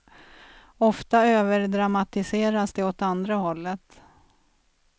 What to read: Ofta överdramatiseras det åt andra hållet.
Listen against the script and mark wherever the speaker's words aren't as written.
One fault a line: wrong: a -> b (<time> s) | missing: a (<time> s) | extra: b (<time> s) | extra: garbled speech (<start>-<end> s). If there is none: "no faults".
no faults